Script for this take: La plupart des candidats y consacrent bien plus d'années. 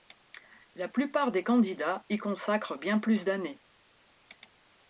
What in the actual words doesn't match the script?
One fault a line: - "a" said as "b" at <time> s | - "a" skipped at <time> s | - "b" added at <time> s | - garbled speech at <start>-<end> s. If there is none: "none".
none